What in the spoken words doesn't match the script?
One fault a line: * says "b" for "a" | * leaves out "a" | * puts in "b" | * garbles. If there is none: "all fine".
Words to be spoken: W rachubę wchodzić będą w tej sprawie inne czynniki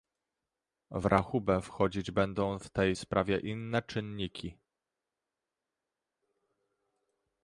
all fine